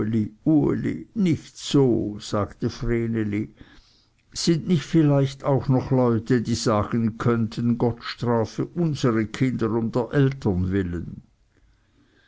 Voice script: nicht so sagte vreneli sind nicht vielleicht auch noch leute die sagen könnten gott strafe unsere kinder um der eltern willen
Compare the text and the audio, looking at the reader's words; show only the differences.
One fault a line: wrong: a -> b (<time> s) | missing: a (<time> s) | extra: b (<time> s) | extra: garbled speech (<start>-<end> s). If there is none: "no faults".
no faults